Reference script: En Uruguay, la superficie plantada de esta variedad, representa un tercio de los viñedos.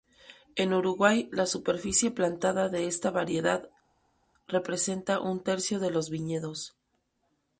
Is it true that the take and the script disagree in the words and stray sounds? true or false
false